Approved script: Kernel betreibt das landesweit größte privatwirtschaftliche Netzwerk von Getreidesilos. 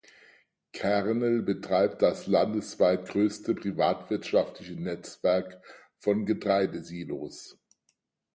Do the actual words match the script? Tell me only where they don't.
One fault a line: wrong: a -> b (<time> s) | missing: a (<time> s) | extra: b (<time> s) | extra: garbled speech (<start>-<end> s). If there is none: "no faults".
no faults